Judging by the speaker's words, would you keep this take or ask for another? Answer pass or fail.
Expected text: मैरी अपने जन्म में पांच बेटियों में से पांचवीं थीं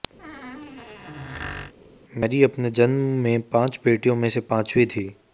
pass